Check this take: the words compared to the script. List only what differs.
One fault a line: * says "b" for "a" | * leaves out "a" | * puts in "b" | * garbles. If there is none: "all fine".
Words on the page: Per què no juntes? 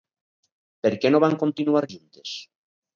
* puts in "van continuar"